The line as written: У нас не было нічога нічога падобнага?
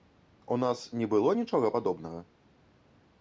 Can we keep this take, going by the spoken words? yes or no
no